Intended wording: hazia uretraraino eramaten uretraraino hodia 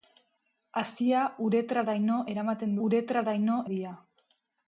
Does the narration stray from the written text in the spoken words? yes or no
no